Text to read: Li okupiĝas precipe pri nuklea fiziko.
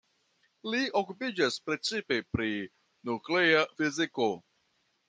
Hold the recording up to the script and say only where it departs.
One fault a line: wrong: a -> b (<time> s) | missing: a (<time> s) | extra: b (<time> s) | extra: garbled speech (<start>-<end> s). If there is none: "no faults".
no faults